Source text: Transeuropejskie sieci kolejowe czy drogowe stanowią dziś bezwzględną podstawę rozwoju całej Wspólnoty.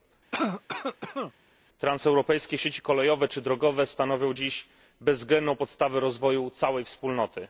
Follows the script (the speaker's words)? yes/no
yes